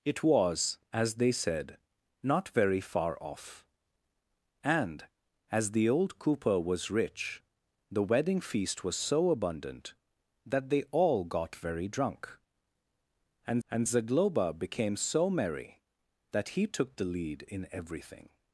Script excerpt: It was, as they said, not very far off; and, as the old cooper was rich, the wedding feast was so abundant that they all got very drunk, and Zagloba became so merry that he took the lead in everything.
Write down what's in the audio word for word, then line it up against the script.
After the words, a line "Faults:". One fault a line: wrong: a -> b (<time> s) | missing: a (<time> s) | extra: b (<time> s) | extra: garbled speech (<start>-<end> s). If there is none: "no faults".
It was, as they said, not very far off; and, as the old cooper was rich, the wedding feast was so abundant that they all got very drunk, and and Zagloba became so merry that he took the lead in everything.
Faults:
extra: and (13.7 s)